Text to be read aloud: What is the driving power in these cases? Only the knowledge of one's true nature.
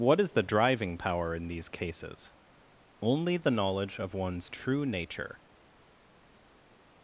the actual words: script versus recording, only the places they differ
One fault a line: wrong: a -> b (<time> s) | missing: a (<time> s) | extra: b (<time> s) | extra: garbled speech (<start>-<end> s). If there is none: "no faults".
no faults